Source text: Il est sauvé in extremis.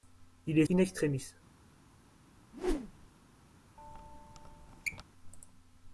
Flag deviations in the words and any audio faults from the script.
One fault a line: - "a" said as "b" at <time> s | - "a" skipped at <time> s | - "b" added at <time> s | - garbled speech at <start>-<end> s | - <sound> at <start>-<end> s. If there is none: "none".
- "sauvé" skipped at 0.7 s
- whoosh at 2.5-3.1 s
- squeak at 3.8-5.0 s